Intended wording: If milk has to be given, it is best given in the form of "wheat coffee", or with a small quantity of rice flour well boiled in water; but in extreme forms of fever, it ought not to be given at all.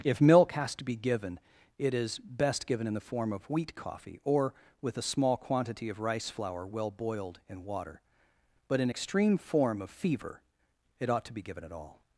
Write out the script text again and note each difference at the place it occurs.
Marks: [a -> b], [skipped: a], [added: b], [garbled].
If milk has to be given, it is best given in the form of "wheat coffee", or with a small quantity of rice flour well boiled in water; but in extreme [forms -> form] of fever, it ought [skipped: not] to be given at all.